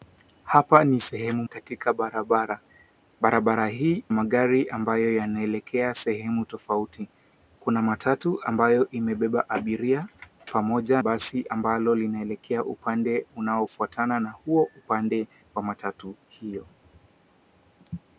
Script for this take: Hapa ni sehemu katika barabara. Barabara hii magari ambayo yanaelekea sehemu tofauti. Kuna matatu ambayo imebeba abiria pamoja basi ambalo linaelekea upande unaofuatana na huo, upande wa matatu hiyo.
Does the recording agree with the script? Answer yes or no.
yes